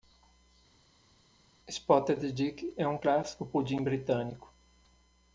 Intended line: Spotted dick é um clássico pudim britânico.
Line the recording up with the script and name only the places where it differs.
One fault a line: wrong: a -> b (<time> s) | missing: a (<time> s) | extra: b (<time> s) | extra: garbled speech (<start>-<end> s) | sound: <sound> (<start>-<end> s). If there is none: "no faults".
no faults